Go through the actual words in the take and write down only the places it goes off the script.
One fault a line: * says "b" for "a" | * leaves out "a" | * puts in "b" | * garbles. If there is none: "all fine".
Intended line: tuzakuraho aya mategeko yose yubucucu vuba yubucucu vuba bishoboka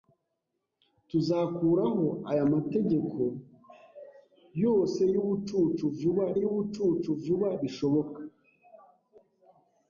all fine